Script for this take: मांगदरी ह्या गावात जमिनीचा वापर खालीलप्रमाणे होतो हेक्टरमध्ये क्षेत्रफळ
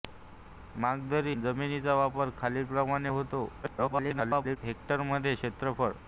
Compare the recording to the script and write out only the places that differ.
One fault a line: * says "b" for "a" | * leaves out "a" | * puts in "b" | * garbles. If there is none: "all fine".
* leaves out "ह्या गावात"
* garbles